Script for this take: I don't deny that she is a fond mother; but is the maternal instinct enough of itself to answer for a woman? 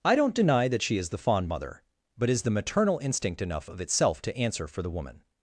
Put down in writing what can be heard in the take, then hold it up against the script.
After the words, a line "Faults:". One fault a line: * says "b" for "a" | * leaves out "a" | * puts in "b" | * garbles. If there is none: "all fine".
I don't deny that she is the fond mother; but is the maternal instinct enough of itself to answer for the woman?
Faults:
* says "the" for "a"
* says "the" for "a"